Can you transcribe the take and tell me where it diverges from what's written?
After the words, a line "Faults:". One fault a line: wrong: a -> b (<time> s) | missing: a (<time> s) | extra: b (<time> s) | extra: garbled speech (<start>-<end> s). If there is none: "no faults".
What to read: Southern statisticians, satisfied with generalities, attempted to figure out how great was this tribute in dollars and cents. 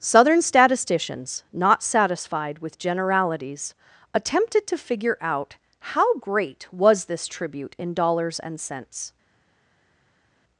Southern statisticians, not satisfied with generalities, attempted to figure out how great was this tribute in dollars and cents.
Faults:
extra: not (1.5 s)